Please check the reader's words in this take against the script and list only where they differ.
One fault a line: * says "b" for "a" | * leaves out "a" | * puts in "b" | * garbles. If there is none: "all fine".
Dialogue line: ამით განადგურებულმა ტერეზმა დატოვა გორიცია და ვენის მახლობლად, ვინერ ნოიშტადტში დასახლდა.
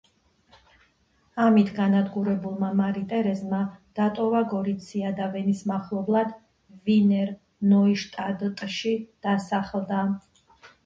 * puts in "მარი"